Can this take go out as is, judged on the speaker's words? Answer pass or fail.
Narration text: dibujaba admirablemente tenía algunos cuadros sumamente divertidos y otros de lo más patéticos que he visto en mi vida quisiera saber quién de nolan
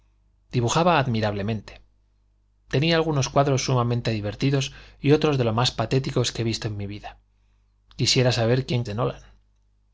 pass